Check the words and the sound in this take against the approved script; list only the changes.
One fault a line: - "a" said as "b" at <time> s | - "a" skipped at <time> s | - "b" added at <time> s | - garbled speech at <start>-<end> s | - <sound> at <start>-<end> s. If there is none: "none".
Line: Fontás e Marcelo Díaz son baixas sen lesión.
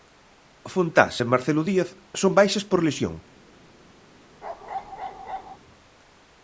- "sen" said as "por" at 2.7 s
- bark at 4.4-5.6 s